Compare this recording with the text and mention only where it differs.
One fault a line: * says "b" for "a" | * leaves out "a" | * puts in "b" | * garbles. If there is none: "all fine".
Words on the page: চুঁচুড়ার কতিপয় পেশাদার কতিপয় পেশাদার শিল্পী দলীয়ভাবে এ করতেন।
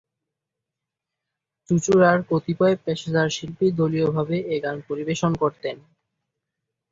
* leaves out "কতিপয় পেশাদার"
* puts in "গান পরিবেশন"